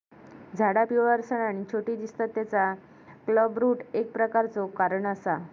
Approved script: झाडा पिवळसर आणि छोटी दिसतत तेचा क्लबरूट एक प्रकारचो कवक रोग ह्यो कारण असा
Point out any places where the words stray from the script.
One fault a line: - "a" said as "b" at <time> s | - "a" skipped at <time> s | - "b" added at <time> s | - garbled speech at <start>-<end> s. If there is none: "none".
- "कवक रोग ह्यो" skipped at 4.7 s